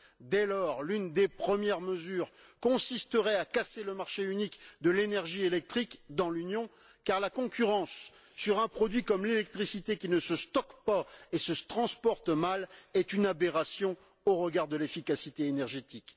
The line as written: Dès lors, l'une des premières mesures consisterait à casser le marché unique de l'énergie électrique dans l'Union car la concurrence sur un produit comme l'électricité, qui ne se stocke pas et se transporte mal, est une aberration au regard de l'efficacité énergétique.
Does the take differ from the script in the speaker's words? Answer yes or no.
no